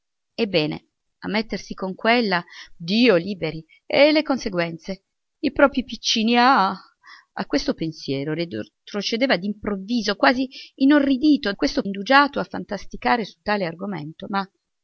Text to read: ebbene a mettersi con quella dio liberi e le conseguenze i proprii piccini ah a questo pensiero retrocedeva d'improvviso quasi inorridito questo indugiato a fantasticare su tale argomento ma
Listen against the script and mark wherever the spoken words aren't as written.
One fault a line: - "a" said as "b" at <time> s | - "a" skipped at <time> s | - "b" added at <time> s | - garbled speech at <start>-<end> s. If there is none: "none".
none